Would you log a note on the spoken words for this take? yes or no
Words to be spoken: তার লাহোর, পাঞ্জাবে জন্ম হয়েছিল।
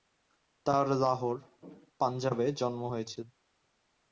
no